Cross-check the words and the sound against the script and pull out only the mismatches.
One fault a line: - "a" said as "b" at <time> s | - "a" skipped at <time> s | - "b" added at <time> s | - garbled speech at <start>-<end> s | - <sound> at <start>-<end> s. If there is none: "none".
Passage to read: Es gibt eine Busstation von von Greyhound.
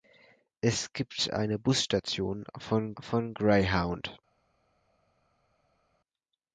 none